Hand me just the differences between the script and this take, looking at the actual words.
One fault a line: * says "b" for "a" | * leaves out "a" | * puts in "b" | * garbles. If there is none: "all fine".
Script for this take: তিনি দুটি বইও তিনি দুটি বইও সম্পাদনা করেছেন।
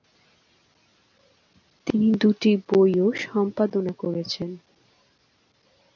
* leaves out "তিনি দুটি বইও"